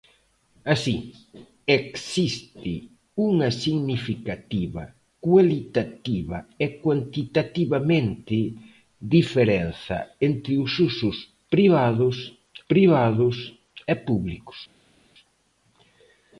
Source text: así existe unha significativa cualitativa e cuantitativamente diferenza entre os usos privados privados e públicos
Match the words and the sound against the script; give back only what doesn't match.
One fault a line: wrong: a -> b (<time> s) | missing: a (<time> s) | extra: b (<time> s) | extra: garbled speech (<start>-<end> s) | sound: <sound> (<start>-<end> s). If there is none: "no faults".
no faults